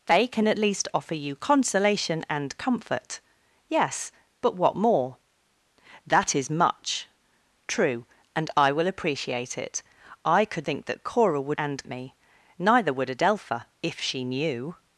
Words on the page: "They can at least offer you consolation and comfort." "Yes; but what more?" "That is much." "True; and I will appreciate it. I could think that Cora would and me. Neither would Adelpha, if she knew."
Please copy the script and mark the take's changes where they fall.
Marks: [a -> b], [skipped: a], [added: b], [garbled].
"They can at least offer you consolation and comfort." "Yes; but what more?" "That is much." "True; and I will appreciate it. I could think that Cora would and me. Neither would Adelpha, if she knew."